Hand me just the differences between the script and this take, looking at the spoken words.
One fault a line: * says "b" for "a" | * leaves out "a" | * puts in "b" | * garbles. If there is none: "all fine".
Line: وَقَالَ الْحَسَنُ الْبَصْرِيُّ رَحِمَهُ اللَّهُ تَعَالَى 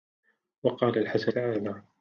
* leaves out "الْبَصْرِيُّ رَحِمَهُ اللَّهُ"